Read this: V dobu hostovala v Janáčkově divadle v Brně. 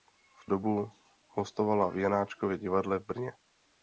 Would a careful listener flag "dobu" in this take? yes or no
no